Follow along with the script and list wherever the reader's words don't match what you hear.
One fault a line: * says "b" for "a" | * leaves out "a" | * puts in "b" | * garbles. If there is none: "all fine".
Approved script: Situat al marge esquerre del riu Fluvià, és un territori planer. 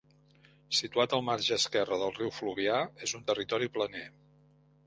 all fine